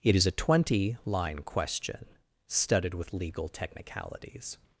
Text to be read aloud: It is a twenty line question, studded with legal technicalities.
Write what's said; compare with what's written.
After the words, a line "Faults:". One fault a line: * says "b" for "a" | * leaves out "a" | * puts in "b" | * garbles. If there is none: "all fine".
It is a twenty line question, studded with legal technicalities.
Faults:
all fine